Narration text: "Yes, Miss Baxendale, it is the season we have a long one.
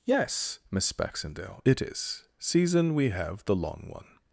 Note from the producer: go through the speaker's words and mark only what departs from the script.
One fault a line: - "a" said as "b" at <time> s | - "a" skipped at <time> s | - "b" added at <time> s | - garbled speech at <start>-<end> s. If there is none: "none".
- "the" skipped at 2.2 s
- "a" said as "the" at 3.4 s